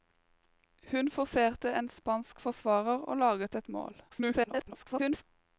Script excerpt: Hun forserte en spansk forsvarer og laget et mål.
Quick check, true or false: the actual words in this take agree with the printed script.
false